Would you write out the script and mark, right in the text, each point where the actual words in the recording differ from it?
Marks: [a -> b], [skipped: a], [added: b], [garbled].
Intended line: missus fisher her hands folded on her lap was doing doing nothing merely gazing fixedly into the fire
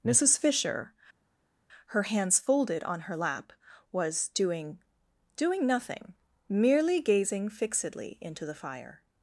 missus fisher her hands folded on her lap was doing doing nothing merely gazing fixedly into the fire